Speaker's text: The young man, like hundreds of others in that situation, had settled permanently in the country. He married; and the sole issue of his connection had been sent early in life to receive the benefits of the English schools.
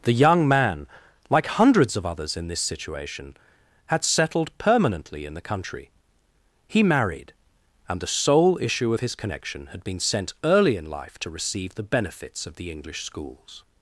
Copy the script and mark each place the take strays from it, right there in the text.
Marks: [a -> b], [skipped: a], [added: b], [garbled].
The young man, like hundreds of others in [that -> this] situation, had settled permanently in the country. He married; and the sole issue of his connection had been sent early in life to receive the benefits of the English schools.